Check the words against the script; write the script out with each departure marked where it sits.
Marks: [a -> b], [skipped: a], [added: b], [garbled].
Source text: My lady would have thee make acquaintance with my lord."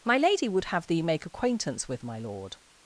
My lady would have thee make acquaintance with my lord."